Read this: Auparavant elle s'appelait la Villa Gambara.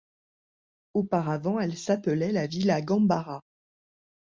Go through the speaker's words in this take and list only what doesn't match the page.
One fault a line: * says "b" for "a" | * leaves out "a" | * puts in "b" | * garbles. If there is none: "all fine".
all fine